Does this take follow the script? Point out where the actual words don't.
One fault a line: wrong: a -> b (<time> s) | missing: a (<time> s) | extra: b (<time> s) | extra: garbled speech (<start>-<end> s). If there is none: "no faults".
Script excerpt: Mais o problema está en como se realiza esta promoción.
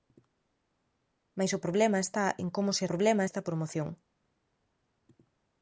wrong: realiza -> problema (2.9 s)